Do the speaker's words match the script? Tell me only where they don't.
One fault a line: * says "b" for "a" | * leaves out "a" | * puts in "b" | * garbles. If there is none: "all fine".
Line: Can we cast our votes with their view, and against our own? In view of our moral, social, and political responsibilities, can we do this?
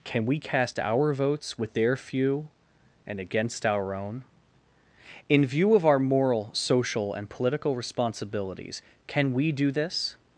* says "few" for "view"